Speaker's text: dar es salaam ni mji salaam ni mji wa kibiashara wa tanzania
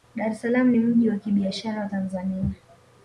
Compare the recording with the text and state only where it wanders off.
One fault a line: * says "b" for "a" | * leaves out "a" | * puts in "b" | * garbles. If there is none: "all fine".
* leaves out "salaam ni mji"